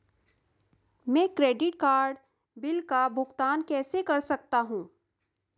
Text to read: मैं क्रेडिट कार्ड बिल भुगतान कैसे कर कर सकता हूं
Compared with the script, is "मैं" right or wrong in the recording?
right